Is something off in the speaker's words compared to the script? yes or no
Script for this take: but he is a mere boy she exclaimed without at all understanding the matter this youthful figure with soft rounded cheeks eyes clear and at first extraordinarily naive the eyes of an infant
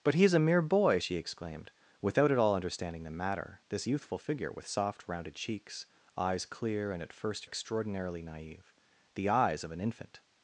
no